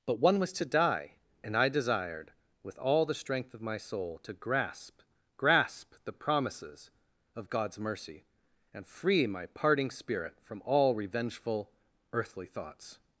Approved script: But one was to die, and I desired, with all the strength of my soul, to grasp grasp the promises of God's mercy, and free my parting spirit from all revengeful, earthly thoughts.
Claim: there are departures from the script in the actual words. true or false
false